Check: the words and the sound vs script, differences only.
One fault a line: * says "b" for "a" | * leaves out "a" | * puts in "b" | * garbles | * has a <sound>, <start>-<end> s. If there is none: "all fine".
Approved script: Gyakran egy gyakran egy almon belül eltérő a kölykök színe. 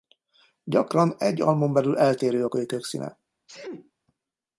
* leaves out "gyakran egy"
* has a sneeze, 3.5-3.9 s